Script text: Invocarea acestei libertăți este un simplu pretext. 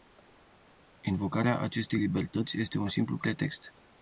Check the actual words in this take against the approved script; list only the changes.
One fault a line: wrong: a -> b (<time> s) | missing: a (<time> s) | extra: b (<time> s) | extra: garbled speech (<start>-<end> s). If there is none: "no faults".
no faults